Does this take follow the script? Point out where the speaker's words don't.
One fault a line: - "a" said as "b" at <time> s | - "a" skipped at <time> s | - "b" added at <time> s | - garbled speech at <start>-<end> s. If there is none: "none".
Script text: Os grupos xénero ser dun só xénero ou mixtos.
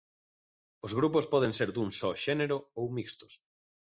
- "xénero" said as "poden" at 1.3 s